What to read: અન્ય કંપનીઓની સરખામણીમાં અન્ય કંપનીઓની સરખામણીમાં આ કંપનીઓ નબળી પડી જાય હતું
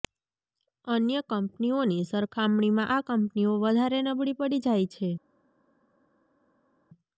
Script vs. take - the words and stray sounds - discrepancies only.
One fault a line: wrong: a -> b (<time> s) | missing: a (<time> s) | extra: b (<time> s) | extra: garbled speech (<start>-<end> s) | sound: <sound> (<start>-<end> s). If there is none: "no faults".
missing: અન્ય કંપનીઓની સરખામણીમાં (2.9 s)
extra: વધારે (3.6 s)
wrong: હતું -> છે (4.9 s)